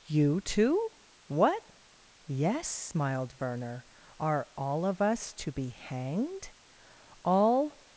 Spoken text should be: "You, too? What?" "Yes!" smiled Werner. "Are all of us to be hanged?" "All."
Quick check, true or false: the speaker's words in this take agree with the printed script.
true